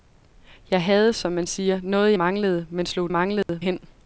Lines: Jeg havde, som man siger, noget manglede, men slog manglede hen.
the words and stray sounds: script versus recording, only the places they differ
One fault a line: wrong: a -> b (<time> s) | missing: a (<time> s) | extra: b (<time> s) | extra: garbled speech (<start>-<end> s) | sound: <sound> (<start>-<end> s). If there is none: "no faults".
sound: dropout (3.4-3.5 s)